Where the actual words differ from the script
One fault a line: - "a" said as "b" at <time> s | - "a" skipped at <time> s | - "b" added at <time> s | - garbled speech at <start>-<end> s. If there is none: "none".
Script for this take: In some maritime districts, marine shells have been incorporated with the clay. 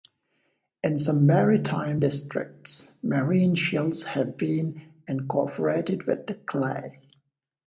none